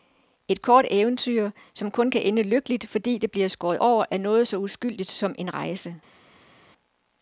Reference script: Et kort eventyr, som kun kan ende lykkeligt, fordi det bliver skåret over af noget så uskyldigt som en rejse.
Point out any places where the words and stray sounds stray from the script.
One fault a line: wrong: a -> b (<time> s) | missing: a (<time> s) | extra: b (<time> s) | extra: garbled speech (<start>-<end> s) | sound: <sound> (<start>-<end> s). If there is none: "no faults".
no faults